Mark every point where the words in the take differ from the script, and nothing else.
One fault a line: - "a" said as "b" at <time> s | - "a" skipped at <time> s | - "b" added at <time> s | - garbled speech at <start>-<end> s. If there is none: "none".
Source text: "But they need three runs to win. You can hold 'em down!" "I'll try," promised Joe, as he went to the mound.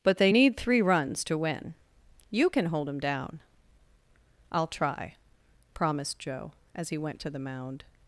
none